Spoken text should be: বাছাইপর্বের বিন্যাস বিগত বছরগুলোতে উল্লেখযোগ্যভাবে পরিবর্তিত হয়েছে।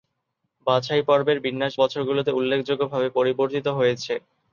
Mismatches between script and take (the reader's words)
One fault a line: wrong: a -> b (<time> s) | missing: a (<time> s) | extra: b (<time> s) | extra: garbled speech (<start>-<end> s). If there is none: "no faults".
missing: বিগত (1.7 s)